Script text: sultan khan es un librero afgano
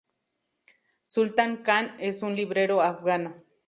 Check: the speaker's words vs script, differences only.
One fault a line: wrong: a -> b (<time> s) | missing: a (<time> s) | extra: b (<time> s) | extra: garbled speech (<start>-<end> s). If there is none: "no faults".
no faults